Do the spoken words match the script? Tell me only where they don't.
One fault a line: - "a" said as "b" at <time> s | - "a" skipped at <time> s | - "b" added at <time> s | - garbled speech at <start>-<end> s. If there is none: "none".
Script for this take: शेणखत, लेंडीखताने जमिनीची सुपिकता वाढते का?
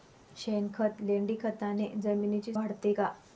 - "सुपिकता" skipped at 2.5 s